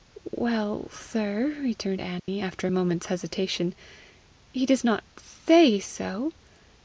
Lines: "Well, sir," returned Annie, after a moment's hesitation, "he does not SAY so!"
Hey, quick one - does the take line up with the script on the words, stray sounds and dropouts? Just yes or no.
no